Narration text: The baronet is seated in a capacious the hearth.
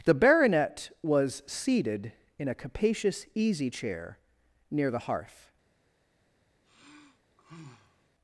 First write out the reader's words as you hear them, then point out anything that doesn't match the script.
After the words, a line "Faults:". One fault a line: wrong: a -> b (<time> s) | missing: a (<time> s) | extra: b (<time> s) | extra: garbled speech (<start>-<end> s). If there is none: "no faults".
The baronet was seated in a capacious easy chair near the hearth.
Faults:
wrong: is -> was (1.0 s)
extra: easy chair near (3.4 s)